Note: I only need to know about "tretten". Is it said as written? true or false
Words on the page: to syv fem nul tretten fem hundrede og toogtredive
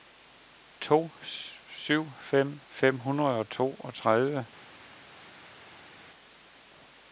false